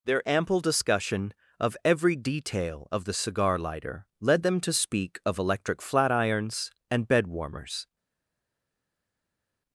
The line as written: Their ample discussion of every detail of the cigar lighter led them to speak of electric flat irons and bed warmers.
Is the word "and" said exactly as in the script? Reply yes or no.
yes